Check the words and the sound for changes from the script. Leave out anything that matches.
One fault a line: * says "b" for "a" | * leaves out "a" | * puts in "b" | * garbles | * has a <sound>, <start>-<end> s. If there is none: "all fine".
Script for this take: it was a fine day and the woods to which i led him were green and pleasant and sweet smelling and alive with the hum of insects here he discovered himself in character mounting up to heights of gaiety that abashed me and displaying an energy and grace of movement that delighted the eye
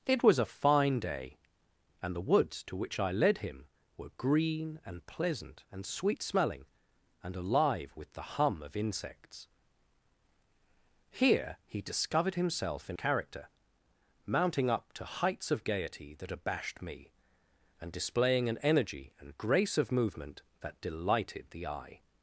all fine